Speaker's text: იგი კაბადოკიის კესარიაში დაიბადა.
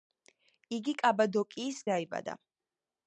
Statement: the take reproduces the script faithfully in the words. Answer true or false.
false